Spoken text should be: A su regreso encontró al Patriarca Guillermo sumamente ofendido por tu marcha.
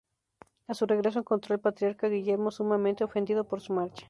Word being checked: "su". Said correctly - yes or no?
yes